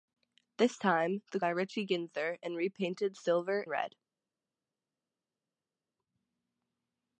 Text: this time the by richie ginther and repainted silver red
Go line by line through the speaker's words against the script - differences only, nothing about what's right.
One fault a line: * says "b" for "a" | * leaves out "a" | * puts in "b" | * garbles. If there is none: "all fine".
all fine